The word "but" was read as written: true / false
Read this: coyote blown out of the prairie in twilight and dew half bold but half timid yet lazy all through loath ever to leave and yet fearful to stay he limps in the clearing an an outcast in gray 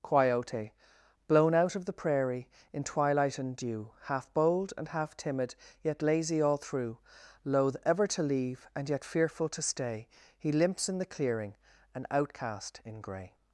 false